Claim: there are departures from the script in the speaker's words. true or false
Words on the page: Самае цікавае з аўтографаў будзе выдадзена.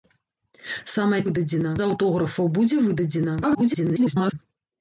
true